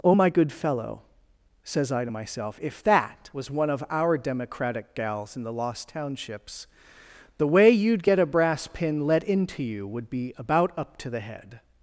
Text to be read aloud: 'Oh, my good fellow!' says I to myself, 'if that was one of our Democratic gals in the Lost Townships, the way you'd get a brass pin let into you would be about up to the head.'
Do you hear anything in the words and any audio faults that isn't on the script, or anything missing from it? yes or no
no